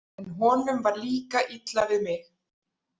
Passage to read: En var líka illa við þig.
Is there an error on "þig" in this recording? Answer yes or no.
yes